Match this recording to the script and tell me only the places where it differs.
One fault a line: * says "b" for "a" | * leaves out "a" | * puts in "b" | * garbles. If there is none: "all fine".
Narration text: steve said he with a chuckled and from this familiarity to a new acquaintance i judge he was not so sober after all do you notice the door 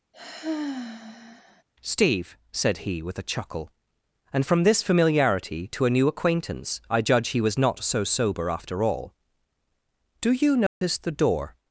* says "chuckle" for "chuckled"